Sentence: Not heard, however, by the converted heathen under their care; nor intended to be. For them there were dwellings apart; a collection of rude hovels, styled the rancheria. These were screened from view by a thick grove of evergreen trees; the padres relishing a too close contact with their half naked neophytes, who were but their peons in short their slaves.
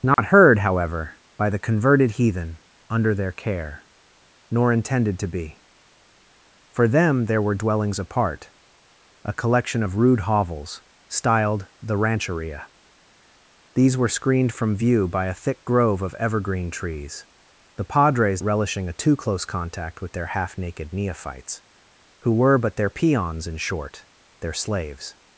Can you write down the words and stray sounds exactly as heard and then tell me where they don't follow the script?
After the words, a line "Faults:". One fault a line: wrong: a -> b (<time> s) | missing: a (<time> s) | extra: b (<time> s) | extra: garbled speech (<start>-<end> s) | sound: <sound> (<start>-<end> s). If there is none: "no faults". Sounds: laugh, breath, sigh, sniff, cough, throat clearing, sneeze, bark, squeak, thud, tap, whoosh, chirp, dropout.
Not heard, however, by the converted heathen under their care; nor intended to be. For them there were dwellings apart; a collection of rude hovels, styled the rancheria. These were screened from view by a thick grove of evergreen trees; the padres relishing a too close contact with their half naked neophytes, who were but their peons in short their slaves.
Faults:
sound: dropout (0.1-0.2 s)